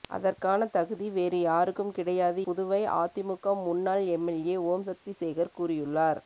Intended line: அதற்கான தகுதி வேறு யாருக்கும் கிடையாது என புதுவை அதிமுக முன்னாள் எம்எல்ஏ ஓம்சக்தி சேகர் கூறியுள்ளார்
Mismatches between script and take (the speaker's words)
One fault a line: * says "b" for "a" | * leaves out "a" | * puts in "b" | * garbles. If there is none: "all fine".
* leaves out "என"